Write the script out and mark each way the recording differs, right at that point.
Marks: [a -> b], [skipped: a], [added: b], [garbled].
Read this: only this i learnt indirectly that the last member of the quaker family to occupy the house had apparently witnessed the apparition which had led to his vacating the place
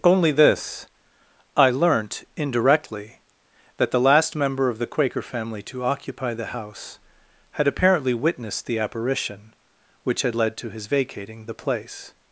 only this i learnt indirectly that the last member of the quaker family to occupy the house had apparently witnessed the apparition which had led to his vacating the place